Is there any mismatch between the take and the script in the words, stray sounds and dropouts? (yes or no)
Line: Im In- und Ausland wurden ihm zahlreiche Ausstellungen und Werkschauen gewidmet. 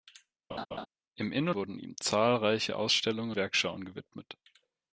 yes